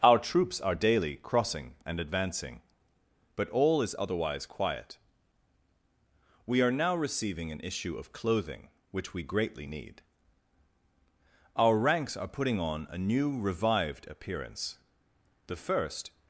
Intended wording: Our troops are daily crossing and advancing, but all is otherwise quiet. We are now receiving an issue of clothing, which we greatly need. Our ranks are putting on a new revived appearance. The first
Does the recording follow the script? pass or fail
pass